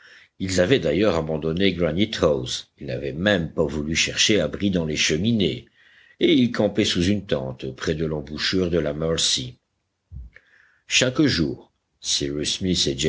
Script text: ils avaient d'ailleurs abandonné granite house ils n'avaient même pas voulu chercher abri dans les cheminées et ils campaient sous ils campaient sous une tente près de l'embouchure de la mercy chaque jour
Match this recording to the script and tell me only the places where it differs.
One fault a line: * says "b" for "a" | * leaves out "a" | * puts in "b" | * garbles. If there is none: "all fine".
* leaves out "ils campaient sous"